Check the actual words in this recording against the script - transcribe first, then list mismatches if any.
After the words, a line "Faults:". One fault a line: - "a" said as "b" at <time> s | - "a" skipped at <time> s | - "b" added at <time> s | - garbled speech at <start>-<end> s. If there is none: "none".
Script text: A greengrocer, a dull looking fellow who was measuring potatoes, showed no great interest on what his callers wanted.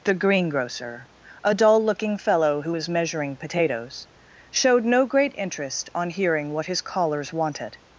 The greengrocer, a dull looking fellow who was measuring potatoes, showed no great interest on hearing what his callers wanted.
Faults:
- "A" said as "The" at 0.0 s
- "hearing" added at 6.1 s